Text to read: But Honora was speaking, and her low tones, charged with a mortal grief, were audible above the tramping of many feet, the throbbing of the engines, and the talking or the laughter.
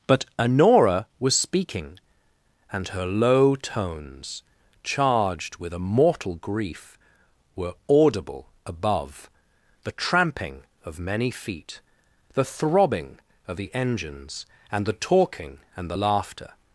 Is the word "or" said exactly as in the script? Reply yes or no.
no